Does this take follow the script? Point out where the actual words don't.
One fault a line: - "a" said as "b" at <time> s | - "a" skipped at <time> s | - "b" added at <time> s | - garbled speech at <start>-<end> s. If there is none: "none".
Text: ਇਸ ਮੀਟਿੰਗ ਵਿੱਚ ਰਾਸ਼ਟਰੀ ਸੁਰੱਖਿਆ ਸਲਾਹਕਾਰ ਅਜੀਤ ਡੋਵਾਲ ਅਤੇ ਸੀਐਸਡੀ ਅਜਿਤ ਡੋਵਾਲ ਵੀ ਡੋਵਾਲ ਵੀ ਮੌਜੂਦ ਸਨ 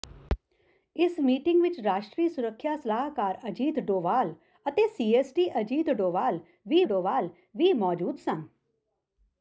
none